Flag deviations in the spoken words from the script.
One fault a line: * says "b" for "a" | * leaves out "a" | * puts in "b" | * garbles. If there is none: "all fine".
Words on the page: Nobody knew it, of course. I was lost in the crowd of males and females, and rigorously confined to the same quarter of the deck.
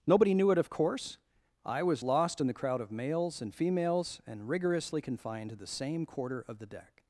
all fine